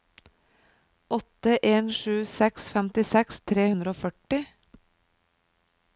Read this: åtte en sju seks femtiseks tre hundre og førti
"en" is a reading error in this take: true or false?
false